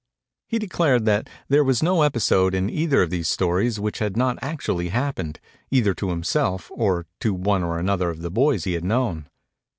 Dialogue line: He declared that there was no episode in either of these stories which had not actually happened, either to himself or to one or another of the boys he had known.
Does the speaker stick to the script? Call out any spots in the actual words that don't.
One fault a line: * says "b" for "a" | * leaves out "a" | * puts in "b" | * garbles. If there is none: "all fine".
all fine